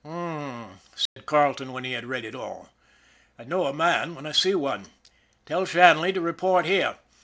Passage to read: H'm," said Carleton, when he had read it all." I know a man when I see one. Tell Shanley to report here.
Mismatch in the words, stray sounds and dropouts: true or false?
true